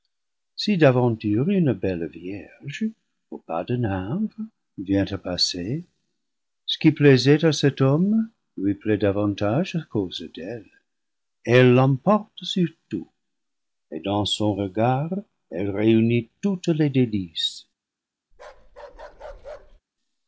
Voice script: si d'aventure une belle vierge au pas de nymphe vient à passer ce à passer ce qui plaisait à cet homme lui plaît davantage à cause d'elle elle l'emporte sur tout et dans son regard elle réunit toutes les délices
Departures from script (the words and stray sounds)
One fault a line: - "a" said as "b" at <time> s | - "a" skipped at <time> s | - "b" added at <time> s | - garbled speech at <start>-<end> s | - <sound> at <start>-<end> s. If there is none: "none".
- "à passer ce" skipped at 6.8 s
- bark at 18.3-19.8 s